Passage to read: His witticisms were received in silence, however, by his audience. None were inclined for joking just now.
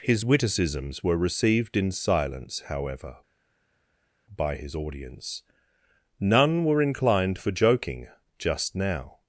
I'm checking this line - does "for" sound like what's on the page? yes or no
yes